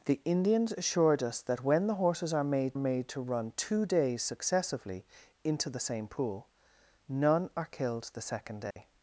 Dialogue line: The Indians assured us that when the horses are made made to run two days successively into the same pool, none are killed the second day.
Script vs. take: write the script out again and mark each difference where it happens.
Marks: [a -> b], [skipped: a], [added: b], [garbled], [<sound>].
The Indians assured us that when the horses are made made to run two days successively into the same pool, none are killed the second day. [dropout]